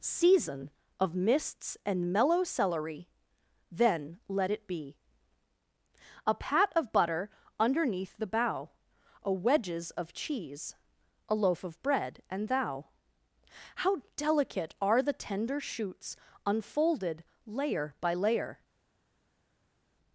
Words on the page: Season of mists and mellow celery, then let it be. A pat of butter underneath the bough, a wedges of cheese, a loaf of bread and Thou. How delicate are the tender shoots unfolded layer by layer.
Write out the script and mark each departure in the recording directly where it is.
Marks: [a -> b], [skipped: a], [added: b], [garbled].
Season of mists and mellow celery, then let it be. A pat of butter underneath the bough, a wedges of cheese, a loaf of bread and Thou. How delicate are the tender shoots unfolded layer by layer.